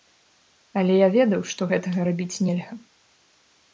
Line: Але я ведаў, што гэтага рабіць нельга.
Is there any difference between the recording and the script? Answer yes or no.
no